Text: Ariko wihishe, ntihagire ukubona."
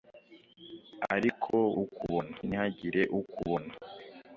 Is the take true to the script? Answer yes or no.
no